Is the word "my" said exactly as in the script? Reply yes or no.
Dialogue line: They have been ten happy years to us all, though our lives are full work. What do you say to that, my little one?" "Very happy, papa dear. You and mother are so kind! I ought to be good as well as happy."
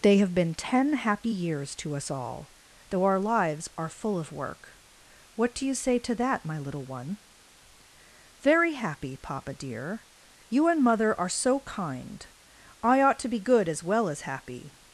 yes